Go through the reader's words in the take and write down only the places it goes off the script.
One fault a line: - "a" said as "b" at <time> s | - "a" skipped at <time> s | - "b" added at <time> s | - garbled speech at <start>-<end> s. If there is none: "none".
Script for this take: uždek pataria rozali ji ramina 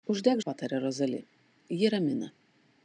none